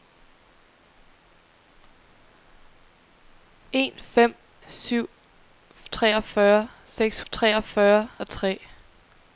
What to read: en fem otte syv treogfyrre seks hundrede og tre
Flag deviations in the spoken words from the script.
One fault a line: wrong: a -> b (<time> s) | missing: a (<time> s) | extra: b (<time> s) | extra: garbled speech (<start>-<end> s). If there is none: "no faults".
missing: otte (4.3 s)
wrong: hundrede -> treogfyrre (7.3 s)